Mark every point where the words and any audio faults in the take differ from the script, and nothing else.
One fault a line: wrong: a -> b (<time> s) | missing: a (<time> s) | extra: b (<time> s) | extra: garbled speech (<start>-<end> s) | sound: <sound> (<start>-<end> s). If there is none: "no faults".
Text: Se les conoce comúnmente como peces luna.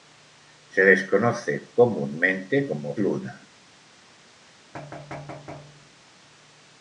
missing: peces (3.0 s)
sound: thud (4.7-6.1 s)